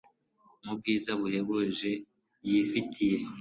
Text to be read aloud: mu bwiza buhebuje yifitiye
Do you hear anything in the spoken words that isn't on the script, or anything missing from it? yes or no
no